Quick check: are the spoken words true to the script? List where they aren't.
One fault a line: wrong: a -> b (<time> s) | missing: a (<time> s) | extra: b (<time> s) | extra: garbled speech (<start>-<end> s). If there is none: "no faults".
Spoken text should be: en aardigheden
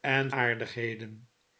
no faults